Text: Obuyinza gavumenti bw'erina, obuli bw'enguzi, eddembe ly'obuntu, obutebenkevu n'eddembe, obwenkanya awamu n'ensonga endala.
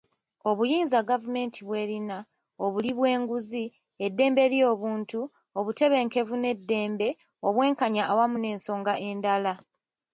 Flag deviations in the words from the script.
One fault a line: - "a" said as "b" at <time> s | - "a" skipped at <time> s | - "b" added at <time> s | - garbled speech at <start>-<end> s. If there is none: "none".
none